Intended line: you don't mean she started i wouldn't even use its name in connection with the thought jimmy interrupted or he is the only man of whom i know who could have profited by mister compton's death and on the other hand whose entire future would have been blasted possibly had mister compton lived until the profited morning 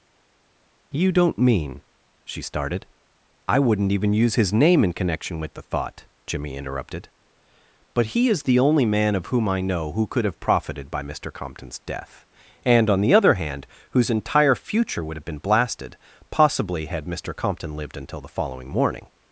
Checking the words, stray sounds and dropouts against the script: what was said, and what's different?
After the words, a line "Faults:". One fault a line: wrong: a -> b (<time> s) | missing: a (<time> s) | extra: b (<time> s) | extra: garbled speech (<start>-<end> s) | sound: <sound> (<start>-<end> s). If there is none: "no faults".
you don't mean she started i wouldn't even use his name in connection with the thought jimmy interrupted but he is the only man of whom i know who could have profited by mister compton's death and on the other hand whose entire future would have been blasted possibly had mister compton lived until the following morning
Faults:
wrong: its -> his (4.3 s)
wrong: or -> but (7.9 s)
wrong: profited -> following (18.3 s)